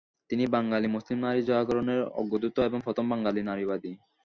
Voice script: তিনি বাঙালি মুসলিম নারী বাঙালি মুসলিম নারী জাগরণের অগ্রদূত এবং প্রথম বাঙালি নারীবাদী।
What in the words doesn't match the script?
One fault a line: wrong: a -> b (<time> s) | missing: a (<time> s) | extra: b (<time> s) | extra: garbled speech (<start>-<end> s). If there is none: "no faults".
missing: বাঙালি মুসলিম নারী (1.4 s)